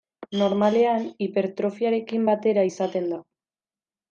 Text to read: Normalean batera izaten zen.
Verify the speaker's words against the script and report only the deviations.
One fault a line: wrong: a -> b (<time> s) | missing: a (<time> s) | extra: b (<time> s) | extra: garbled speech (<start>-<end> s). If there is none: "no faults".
extra: hipertrofiarekin (1.2 s)
wrong: zen -> da (3.1 s)